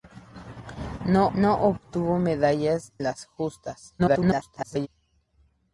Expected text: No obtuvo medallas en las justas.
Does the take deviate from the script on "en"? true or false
true